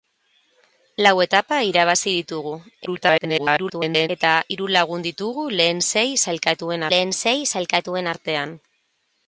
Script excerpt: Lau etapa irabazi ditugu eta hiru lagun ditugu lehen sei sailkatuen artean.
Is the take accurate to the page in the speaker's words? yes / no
no